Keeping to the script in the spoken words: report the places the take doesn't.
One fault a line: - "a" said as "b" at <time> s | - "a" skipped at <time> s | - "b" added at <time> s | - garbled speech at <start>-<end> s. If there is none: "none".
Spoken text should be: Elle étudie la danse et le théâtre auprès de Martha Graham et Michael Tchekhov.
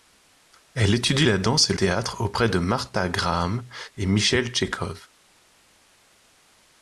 - "le" skipped at 1.7 s